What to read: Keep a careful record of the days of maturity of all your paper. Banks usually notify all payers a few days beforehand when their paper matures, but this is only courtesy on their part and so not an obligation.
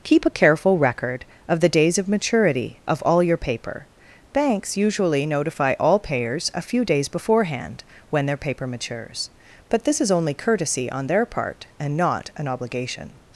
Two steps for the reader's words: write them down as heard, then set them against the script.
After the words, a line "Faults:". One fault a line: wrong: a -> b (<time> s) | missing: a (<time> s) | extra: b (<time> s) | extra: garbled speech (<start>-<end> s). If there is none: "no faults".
Keep a careful record of the days of maturity of all your paper. Banks usually notify all payers a few days beforehand when their paper matures, but this is only courtesy on their part and not an obligation.
Faults:
missing: so (12.0 s)